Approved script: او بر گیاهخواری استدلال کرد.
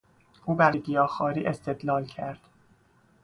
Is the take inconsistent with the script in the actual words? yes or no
no